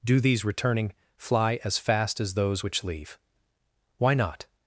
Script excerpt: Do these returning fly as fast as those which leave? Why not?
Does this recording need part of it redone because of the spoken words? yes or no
no